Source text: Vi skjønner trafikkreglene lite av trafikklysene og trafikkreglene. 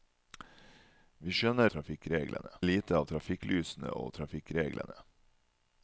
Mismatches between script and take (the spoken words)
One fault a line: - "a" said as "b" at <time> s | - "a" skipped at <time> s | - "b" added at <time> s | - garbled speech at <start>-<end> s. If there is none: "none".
none